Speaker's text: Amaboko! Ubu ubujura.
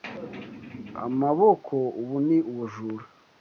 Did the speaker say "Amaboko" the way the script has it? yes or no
yes